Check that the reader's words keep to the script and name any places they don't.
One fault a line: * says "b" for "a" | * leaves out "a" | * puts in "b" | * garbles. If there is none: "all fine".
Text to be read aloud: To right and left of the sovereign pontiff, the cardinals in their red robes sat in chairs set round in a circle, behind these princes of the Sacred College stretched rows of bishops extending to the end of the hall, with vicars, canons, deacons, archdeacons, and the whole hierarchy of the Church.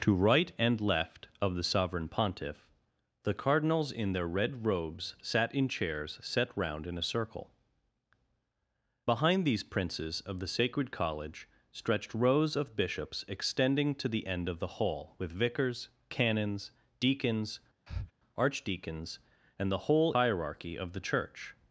all fine